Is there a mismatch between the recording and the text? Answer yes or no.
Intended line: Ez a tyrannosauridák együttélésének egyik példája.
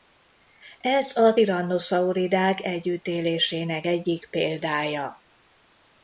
no